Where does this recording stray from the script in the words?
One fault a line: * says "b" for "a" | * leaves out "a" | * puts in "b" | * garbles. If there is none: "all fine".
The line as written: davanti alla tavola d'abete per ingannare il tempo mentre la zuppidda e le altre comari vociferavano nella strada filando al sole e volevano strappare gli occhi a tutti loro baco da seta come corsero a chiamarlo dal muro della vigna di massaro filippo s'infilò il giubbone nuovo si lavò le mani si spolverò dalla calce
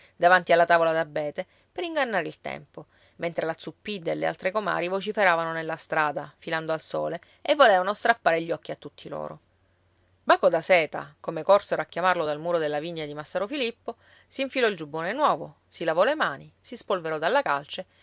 all fine